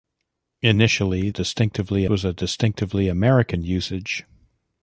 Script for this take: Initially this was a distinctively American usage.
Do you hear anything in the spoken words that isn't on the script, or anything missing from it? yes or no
yes